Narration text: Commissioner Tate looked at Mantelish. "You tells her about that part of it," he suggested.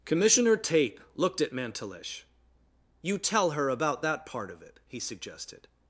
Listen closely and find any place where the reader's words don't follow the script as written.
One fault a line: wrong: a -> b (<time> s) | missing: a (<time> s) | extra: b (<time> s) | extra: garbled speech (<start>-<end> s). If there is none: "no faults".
wrong: tells -> tell (3.2 s)